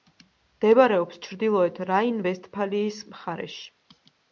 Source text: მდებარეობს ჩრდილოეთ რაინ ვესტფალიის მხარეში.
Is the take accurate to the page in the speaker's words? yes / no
yes